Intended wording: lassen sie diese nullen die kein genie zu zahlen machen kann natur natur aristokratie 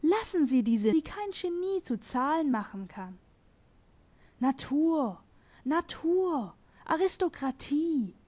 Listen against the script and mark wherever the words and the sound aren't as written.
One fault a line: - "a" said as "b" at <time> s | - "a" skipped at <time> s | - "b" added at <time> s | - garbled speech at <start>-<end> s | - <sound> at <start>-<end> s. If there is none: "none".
- "nullen" skipped at 0.9 s